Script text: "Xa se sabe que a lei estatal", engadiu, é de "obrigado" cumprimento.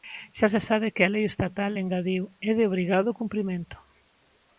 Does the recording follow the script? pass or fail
pass